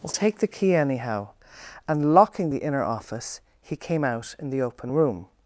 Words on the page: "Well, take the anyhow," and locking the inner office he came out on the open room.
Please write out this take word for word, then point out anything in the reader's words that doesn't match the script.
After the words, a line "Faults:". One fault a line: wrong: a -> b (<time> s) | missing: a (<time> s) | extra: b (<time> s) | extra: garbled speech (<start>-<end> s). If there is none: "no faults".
"Well, take the key anyhow," and locking the inner office he came out in the open room.
Faults:
extra: key (0.5 s)
wrong: on -> in (4.4 s)